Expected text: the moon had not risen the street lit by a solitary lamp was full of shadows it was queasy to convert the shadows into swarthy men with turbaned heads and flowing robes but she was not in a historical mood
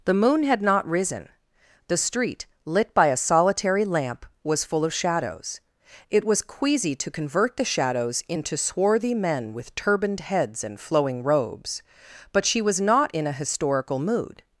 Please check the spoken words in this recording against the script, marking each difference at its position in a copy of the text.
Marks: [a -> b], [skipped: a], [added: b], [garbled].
the moon had not risen the street lit by a solitary lamp was full of shadows it was queasy to convert the shadows into swarthy men with turbaned heads and flowing robes but she was not in a historical mood